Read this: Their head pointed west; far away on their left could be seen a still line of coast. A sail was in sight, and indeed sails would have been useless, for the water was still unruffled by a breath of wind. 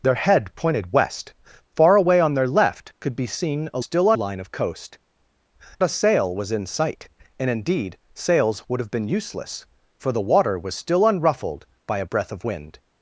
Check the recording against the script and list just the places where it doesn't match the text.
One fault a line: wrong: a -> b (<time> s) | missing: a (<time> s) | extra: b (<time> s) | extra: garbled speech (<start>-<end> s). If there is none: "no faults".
no faults